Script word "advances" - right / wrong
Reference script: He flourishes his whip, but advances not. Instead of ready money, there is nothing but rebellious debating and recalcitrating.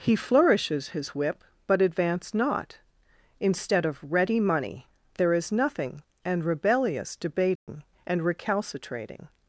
wrong